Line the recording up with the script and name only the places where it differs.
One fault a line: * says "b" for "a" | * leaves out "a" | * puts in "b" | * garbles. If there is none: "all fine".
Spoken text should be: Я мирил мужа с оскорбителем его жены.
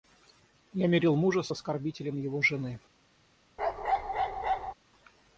all fine